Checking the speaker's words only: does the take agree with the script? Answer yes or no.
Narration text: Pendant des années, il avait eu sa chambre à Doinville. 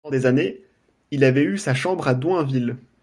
yes